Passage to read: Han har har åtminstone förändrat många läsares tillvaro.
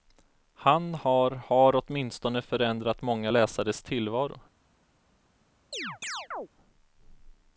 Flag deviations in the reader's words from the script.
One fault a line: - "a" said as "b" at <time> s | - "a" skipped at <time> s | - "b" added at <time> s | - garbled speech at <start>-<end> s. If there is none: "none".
none